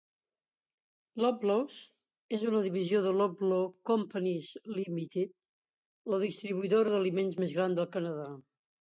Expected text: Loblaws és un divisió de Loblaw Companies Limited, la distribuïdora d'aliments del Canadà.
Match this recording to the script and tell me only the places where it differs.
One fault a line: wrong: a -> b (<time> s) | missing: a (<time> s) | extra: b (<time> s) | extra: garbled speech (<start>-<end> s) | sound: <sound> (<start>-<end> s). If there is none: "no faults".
wrong: un -> una (2.5 s)
extra: més gran (7.5 s)